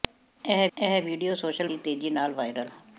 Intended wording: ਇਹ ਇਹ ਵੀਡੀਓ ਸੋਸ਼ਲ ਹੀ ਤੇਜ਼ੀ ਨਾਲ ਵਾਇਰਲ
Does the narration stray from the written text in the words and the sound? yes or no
no